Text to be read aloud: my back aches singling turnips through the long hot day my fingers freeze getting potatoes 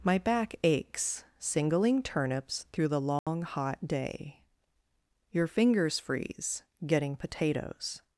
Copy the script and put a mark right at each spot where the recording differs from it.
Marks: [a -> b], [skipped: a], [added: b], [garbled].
my back aches singling turnips through the long hot day [my -> your] fingers freeze getting potatoes